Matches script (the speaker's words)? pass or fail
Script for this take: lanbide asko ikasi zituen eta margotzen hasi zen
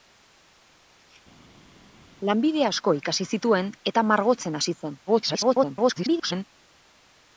fail